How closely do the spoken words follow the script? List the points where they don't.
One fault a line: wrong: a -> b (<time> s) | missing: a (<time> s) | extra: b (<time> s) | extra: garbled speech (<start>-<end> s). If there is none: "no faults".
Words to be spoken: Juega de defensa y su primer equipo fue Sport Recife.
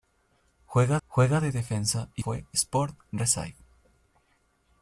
extra: juega (1.1 s)
missing: su primer equipo (2.2 s)